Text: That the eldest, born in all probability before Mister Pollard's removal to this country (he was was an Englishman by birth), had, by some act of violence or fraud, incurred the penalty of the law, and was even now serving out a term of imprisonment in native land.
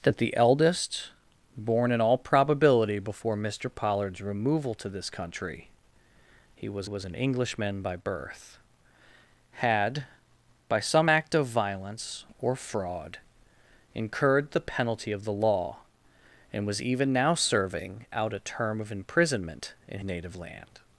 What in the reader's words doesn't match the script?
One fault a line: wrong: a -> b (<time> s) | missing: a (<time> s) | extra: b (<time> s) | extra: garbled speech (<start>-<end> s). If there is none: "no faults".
no faults